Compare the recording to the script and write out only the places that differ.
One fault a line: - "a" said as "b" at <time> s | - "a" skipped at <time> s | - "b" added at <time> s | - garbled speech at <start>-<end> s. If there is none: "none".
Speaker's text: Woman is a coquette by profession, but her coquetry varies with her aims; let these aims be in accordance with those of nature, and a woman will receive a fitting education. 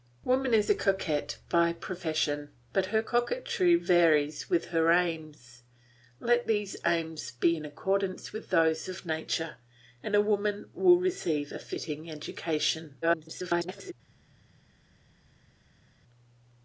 - garbled speech at 13.0-13.9 s